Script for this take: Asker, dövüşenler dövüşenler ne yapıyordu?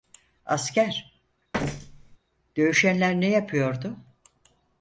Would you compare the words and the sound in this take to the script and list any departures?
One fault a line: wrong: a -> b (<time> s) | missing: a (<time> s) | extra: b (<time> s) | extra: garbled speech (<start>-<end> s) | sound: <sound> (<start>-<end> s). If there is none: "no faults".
sound: thud (1.5-2.2 s)
missing: dövüşenler (3.2 s)